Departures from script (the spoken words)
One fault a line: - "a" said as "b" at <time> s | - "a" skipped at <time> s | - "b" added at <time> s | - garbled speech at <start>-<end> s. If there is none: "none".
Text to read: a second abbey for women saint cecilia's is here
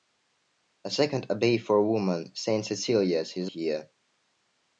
none